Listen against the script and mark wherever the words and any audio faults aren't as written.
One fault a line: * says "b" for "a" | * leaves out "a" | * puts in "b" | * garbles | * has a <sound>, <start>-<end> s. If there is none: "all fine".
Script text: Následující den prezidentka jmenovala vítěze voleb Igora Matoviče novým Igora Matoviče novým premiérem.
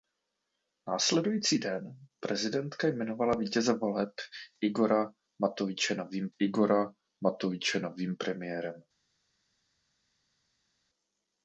all fine